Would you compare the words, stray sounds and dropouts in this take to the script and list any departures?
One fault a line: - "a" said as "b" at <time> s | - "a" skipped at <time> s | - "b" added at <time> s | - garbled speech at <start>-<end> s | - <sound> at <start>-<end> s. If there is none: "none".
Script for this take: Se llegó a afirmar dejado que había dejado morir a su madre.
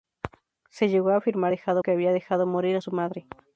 none